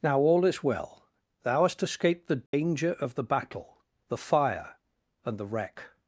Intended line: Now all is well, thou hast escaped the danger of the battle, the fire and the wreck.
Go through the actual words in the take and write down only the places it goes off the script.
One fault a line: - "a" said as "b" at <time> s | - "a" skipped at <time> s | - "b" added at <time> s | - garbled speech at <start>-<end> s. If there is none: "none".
none